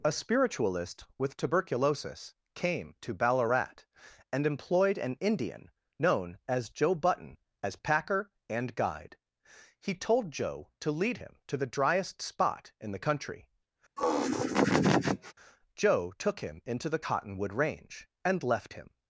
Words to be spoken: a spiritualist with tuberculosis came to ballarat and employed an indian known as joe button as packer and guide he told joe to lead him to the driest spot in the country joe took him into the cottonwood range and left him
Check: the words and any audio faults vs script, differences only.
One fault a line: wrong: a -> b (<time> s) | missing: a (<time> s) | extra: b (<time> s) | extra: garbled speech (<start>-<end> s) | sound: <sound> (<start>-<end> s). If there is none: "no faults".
sound: laugh (14.0-15.3 s)